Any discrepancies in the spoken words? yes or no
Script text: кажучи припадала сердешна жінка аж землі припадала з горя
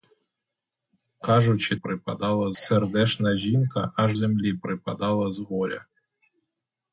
no